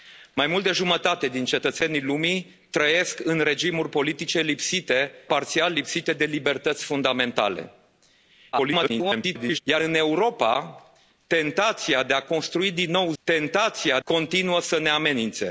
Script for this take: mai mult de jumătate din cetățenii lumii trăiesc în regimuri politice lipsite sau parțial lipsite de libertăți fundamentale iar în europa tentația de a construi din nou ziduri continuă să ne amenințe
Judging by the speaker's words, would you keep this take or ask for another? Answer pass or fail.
fail